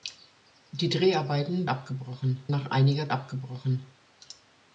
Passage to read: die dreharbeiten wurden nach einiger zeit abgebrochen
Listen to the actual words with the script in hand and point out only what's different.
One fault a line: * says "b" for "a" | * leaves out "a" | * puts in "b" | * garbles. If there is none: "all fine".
* says "abgebrochen" for "wurden"
* leaves out "zeit"